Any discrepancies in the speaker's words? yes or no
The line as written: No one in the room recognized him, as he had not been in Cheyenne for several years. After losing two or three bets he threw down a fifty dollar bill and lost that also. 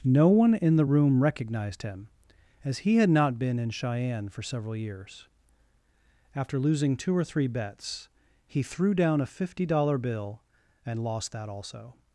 no